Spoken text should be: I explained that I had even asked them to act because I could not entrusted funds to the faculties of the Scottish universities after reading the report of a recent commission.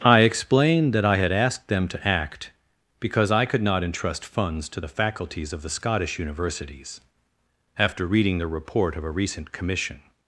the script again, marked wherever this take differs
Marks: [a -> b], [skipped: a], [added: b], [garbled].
I explained that I had [skipped: even] asked them to act because I could not [entrusted -> entrust] funds to the faculties of the Scottish universities after reading the report of a recent commission.